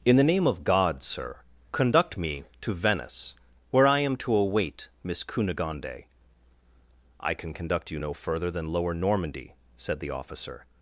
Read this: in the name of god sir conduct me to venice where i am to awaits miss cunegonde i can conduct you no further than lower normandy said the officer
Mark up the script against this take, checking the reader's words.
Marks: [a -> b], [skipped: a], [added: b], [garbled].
in the name of god sir conduct me to venice where i am to [awaits -> await] miss cunegonde i can conduct you no further than lower normandy said the officer